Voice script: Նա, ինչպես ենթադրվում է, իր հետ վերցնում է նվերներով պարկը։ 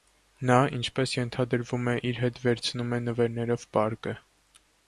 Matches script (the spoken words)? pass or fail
pass